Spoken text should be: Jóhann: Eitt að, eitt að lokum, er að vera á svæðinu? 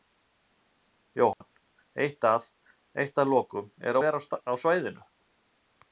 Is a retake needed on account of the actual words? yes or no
no